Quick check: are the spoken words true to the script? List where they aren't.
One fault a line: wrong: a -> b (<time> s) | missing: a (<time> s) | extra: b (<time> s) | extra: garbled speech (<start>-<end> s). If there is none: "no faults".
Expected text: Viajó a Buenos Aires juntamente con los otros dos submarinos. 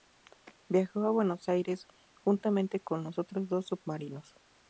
no faults